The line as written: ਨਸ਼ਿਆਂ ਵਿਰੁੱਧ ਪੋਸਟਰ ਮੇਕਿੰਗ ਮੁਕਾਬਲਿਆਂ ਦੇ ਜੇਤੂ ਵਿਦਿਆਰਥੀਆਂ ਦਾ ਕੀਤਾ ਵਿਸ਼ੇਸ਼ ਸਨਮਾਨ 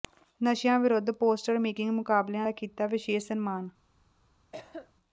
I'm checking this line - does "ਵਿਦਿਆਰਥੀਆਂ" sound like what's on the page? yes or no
no